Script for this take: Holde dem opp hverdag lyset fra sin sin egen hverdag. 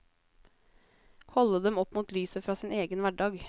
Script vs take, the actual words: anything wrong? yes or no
yes